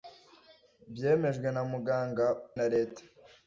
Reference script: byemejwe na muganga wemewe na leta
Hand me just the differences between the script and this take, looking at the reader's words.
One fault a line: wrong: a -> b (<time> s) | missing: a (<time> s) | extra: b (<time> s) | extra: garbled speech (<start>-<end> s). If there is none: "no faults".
missing: wemewe (2.2 s)